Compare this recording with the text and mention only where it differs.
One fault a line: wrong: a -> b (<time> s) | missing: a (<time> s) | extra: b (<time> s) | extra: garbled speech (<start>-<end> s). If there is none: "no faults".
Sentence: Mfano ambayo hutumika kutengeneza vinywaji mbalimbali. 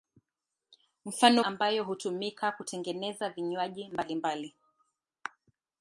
no faults